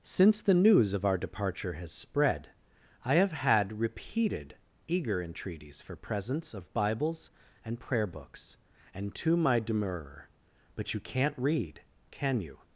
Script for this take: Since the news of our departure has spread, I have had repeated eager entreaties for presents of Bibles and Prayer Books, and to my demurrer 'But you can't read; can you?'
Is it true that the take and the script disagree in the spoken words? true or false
false